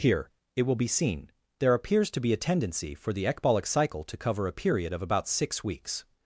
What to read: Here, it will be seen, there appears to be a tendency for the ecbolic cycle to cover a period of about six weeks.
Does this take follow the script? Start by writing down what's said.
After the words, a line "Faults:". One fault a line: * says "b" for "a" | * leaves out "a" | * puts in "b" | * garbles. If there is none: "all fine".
Here, it will be seen, there appears to be a tendency for the ecbolic cycle to cover a period of about six weeks.
Faults:
all fine